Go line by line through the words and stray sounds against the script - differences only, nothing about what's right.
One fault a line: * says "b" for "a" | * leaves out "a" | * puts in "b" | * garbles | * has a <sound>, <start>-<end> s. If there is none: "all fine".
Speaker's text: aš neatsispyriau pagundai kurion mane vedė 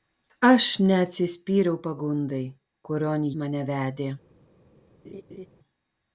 * has a laugh, 5.0-5.5 s